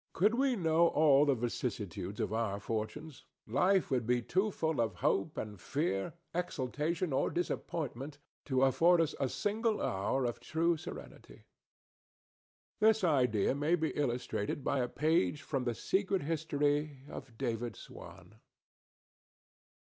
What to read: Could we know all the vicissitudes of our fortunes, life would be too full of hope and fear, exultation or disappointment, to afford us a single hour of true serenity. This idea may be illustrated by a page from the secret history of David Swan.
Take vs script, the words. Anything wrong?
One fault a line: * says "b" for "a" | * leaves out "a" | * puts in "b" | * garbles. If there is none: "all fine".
all fine